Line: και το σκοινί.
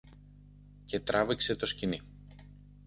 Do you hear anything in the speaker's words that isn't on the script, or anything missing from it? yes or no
yes